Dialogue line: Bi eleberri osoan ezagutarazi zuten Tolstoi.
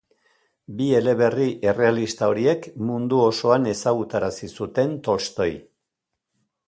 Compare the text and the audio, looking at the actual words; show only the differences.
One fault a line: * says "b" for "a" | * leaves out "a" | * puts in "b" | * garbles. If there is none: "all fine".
* puts in "errealista horiek mundu"